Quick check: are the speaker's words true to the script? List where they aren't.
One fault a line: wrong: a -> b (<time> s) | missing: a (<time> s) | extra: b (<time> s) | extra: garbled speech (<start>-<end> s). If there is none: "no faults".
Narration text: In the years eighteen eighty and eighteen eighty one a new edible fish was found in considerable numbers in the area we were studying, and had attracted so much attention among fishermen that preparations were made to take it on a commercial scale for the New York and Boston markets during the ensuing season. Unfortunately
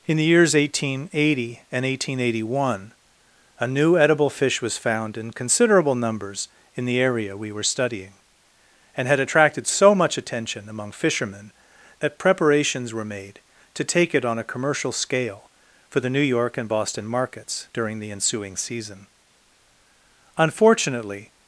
no faults